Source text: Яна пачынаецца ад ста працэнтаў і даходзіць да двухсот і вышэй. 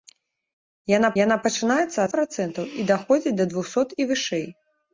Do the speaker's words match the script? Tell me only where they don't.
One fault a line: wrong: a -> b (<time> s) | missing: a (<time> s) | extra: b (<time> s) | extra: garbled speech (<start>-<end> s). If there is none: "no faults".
extra: яна (1.2 s)
missing: ста (2.1 s)